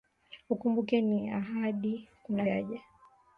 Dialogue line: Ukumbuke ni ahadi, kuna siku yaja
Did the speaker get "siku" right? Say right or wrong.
wrong